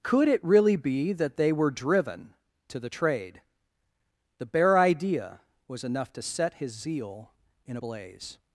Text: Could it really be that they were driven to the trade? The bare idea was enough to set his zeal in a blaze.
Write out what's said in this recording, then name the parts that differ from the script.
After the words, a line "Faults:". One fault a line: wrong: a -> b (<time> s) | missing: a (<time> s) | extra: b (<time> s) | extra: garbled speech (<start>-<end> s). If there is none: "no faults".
Could it really be that they were driven to the trade? The bare idea was enough to set his zeal in a blaze.
Faults:
no faults